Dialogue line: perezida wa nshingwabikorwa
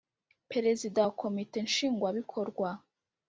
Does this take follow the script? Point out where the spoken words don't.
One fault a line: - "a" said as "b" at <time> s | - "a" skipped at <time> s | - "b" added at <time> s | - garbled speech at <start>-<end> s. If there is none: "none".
- "komite" added at 1.2 s